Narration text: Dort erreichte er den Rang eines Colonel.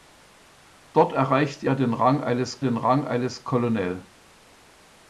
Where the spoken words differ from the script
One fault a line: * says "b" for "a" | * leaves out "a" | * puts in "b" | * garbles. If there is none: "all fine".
* puts in "den Rang eines"